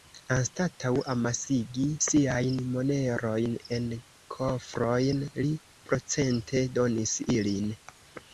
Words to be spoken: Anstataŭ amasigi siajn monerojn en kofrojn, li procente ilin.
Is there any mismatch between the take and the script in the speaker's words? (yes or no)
yes